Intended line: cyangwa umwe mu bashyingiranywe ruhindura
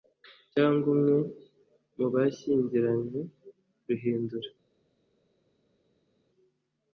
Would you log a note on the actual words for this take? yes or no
no